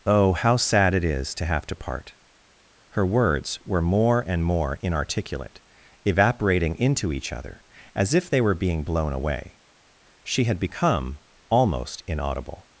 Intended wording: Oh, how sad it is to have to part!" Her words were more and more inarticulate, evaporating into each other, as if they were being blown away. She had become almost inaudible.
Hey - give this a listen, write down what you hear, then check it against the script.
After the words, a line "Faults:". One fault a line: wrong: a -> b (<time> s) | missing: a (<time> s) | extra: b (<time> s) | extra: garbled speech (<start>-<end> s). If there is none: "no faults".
Oh, how sad it is to have to part!" Her words were more and more inarticulate, evaporating into each other, as if they were being blown away. She had become almost inaudible.
Faults:
no faults